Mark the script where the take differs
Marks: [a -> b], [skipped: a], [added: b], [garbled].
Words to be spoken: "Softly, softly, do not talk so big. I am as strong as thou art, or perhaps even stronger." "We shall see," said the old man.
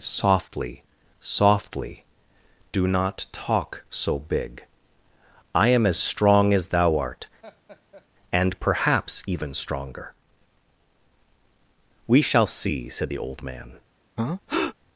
"Softly, softly, do not talk so big. I am as strong as thou art, [or -> and] perhaps even stronger." "We shall see," said the old man.